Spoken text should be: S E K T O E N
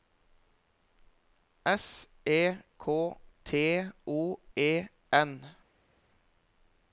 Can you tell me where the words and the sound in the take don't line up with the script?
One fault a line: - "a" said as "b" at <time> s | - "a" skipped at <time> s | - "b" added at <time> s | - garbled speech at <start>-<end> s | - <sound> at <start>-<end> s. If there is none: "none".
none